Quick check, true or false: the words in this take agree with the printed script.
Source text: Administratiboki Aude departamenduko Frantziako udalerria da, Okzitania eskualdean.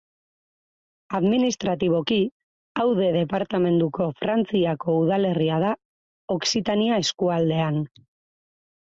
true